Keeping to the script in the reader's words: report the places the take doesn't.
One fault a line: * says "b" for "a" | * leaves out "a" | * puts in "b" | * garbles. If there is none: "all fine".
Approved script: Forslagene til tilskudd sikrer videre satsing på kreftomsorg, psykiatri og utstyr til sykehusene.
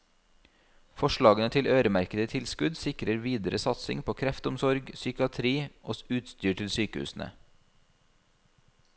* puts in "øremerkede"